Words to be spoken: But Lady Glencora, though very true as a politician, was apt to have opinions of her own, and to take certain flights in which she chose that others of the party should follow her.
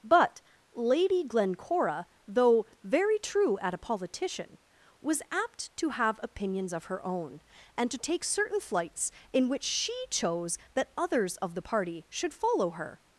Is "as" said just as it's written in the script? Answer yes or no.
no